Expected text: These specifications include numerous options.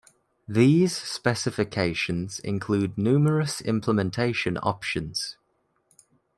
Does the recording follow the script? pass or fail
fail